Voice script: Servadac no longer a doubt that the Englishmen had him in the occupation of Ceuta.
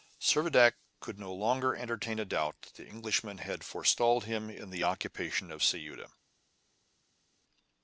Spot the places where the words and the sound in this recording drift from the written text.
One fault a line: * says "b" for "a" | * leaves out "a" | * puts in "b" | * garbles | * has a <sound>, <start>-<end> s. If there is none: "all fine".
* puts in "could"
* puts in "entertain"
* puts in "forestalled"